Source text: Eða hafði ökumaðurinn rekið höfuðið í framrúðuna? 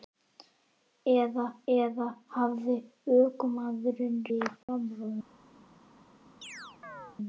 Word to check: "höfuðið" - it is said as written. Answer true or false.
false